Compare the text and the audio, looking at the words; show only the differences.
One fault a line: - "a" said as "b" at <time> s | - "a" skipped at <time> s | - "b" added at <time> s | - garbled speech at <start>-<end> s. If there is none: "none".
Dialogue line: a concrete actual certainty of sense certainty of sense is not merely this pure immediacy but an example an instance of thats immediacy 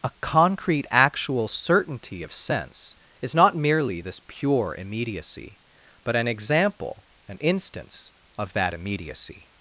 - "certainty of sense" skipped at 2.9 s
- "thats" said as "that" at 8.5 s